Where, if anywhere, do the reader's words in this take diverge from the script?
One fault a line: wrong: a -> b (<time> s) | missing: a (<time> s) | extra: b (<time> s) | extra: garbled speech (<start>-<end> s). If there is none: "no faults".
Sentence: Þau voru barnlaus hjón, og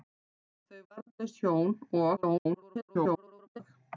missing: voru (0.8 s)
extra: garbled speech (2.2-3.6 s)